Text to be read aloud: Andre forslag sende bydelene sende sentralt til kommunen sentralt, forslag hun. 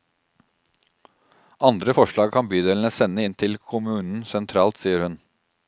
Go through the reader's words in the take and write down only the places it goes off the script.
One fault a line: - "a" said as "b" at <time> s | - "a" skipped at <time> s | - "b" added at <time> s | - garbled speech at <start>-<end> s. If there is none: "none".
- "sende" said as "kan" at 2.3 s
- "sentralt" said as "inn" at 3.2 s
- "forslag" said as "sier" at 4.8 s